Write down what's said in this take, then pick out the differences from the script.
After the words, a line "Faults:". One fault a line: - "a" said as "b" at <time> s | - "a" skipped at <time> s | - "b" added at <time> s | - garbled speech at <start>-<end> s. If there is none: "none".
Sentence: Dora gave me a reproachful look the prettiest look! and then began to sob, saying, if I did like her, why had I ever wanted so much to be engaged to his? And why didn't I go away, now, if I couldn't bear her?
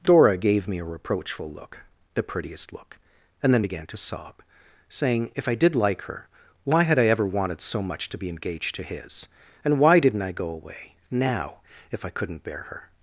Dora gave me a reproachful look the prettiest look! and then began to sob, saying, if I did like her, why had I ever wanted so much to be engaged to his? And why didn't I go away, now, if I couldn't bear her?
Faults:
none